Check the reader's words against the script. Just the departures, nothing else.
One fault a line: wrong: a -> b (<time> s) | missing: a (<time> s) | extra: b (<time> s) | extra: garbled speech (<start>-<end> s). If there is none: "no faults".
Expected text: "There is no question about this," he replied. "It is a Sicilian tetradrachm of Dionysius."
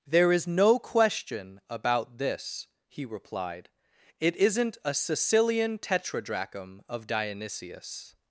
wrong: is -> isn't (4.3 s)